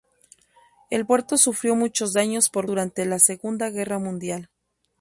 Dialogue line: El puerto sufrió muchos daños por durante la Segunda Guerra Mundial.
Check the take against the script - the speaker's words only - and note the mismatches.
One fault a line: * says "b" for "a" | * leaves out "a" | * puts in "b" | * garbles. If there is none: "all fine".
all fine